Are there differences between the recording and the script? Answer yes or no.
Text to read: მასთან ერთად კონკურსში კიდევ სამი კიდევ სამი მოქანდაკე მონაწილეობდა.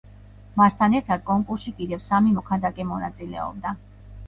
yes